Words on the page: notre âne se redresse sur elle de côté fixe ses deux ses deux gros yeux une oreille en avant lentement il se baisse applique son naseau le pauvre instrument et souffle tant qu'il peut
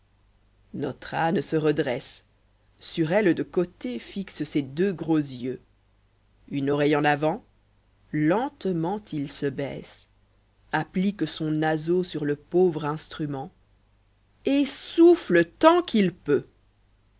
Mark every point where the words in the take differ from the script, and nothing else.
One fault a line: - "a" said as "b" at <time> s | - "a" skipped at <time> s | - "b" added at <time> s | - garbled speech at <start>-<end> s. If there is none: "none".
- "ses deux" skipped at 4.9 s
- "sur" added at 12.0 s